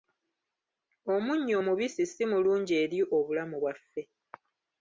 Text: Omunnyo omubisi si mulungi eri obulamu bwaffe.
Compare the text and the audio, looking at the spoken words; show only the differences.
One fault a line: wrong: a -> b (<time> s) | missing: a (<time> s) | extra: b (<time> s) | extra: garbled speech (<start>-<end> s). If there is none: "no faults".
no faults